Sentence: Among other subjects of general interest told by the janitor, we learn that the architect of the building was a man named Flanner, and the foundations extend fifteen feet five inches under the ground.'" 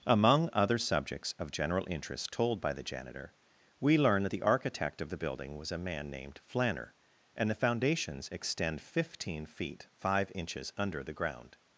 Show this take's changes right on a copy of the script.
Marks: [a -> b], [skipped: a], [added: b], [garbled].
Among other subjects of general interest told by the janitor, we learn that the architect of the building was a man named Flanner, and the foundations extend fifteen feet five inches under the ground.'"